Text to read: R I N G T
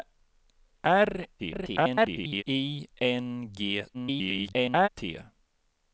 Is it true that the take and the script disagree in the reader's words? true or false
true